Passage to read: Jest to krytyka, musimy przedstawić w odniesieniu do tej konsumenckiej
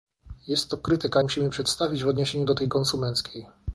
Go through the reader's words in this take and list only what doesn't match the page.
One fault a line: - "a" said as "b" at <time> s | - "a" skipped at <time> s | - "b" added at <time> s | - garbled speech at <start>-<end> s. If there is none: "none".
none